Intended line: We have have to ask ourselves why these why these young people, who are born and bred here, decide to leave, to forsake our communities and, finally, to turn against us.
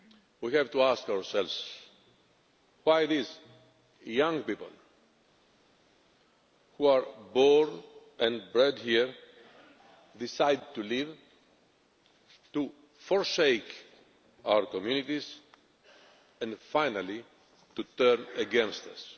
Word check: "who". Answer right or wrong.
right